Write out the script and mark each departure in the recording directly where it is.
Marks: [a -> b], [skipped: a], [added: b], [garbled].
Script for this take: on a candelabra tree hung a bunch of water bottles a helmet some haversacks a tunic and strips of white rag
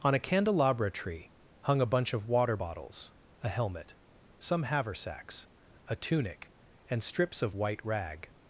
on a candelabra tree hung a bunch of water bottles a helmet some haversacks a tunic and strips of white rag